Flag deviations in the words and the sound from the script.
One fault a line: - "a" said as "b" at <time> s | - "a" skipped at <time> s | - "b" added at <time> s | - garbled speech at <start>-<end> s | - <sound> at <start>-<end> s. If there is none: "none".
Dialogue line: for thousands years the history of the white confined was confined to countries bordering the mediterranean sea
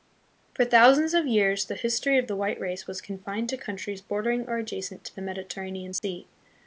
- "of" added at 1.1 s
- "confined" said as "race" at 2.6 s
- "or adjacent to" added at 4.5 s
- dropout at 6.0-6.0 s